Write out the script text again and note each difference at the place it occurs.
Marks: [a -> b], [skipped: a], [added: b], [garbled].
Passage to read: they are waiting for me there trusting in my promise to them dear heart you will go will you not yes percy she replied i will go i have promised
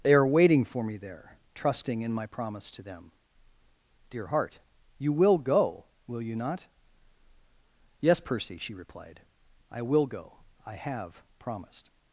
they are waiting for me there trusting in my promise to them dear heart you will go will you not yes percy she replied i will go i have promised